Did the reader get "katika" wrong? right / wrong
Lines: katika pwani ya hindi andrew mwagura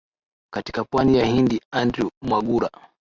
right